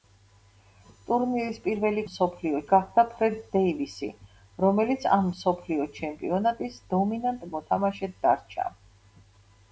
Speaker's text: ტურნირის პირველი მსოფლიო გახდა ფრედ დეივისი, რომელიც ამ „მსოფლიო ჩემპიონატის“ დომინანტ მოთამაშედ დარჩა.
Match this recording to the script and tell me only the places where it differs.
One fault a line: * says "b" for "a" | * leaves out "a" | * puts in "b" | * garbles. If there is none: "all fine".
all fine